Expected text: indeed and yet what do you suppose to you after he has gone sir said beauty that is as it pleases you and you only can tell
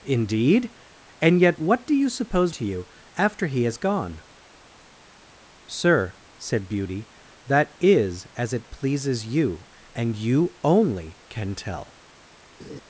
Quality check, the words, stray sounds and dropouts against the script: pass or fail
fail